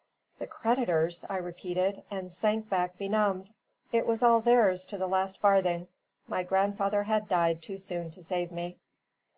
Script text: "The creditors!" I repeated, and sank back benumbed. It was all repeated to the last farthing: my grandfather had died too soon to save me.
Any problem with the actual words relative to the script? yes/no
yes